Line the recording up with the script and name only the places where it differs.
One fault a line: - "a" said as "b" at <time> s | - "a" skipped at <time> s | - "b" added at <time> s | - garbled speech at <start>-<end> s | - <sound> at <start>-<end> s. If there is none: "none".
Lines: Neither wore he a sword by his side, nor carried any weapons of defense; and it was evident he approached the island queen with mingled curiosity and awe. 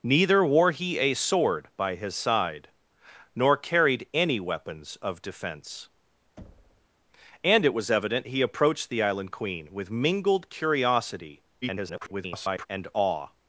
- thud at 6.4-6.9 s
- garbled speech at 11.6-12.7 s